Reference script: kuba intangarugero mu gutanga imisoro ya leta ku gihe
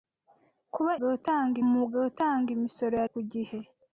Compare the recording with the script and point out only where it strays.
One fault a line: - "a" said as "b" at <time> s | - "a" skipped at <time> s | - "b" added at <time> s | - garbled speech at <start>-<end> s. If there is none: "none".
- "intangarugero" said as "gutanga" at 1.0 s
- "leta" skipped at 3.1 s